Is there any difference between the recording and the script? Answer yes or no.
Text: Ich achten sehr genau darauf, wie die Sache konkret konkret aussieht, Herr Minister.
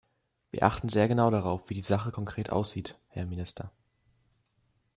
yes